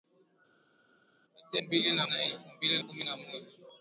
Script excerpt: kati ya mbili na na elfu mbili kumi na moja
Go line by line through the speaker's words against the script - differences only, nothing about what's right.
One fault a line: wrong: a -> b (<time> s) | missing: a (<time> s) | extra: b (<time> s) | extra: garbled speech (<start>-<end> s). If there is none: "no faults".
no faults